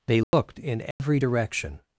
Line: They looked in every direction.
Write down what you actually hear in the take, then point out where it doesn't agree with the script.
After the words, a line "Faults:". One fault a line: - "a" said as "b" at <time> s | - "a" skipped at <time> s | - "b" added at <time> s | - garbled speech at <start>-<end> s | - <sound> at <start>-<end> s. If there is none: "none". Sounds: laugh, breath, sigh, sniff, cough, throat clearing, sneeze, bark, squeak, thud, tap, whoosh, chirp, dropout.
They looked in every direction.
Faults:
- dropout at 0.2-0.3 s
- dropout at 0.9-1.0 s